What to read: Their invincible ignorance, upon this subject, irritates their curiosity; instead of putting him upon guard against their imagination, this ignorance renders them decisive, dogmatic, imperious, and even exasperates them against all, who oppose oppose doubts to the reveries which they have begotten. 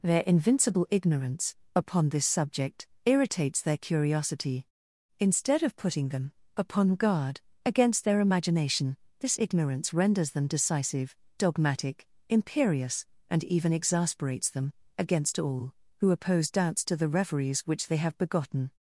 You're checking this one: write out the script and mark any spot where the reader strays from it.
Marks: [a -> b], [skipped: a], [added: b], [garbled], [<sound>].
Their invincible ignorance, upon this subject, irritates their curiosity; instead of putting [him -> them] upon guard against their imagination, this ignorance renders them decisive, dogmatic, imperious, and even exasperates them against all, who oppose [skipped: oppose] doubts to the reveries which they have begotten.